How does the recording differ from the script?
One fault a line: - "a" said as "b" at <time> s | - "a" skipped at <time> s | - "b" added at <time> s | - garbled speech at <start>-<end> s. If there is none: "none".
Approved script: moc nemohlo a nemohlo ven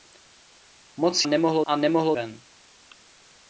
none